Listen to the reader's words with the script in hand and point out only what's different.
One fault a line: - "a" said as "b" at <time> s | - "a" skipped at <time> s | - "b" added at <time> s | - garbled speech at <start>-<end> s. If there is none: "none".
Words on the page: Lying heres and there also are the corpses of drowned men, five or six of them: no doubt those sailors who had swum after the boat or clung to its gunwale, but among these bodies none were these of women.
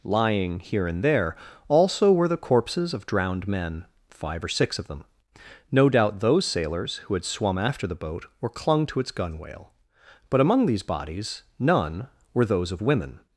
- "heres" said as "here" at 0.6 s
- "are" said as "were" at 2.1 s
- "these" said as "those" at 12.5 s